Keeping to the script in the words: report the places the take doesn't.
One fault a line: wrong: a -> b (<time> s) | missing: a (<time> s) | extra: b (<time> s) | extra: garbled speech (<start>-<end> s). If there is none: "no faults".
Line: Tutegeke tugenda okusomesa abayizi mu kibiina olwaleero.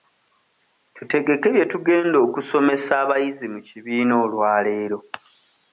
extra: bye (1.5 s)